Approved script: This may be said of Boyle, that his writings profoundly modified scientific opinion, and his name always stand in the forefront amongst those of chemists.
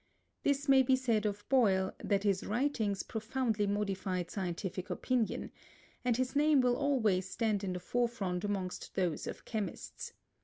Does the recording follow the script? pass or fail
fail